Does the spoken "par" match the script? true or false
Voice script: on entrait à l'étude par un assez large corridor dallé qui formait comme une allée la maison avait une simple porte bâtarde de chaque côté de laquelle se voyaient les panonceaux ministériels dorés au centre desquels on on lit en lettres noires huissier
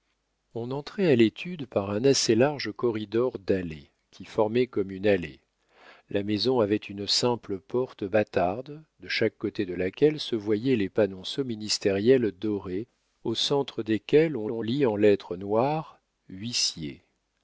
true